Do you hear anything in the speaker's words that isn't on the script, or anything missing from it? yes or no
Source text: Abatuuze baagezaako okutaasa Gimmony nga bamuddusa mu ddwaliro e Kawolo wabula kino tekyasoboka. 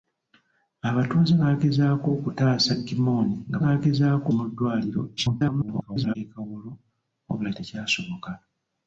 yes